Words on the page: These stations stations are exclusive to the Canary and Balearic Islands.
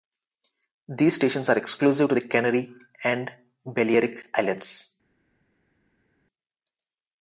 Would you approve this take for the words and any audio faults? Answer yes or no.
no